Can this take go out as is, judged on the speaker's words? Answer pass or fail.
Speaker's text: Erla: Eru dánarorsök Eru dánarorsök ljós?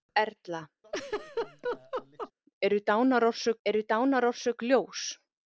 pass